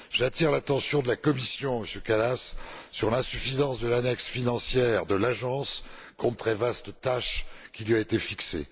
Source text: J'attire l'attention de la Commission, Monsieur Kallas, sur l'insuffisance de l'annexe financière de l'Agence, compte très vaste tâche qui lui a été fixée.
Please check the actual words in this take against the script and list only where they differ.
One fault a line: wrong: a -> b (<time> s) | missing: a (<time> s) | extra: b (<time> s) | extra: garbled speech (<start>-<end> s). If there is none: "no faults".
no faults